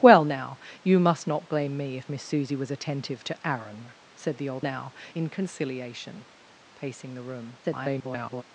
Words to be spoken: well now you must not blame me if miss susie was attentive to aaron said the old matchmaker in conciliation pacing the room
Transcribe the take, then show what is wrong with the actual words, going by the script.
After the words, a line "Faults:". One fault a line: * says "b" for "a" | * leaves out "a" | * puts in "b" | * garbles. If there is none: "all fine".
well now you must not blame me if miss susie was attentive to aaron said the old now in conciliation pacing the room [garbled]
Faults:
* says "now" for "matchmaker"
* garbles